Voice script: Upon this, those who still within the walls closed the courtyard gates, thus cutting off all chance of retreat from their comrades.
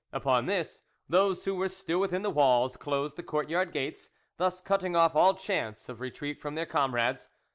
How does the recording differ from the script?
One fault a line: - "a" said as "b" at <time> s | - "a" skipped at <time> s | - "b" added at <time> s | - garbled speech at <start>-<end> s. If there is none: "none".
- "were" added at 1.5 s